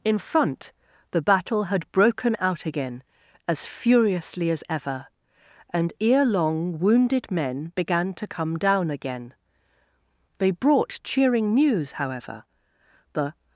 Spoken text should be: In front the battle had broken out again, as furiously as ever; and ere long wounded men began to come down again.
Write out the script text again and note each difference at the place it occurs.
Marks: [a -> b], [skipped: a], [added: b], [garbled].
In front the battle had broken out again, as furiously as ever; and ere long wounded men began to come down again. [added: They brought cheering news however The]